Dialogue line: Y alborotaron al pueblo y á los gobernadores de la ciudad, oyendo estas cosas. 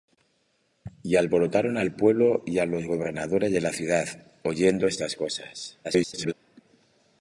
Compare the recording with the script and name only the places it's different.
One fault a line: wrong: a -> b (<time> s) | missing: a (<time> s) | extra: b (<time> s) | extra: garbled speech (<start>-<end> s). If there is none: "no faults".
extra: garbled speech (5.8-6.3 s)